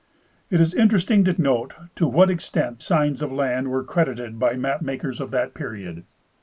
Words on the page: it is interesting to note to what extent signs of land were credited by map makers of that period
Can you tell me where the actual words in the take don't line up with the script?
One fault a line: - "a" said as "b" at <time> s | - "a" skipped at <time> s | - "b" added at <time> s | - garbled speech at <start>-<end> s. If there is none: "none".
none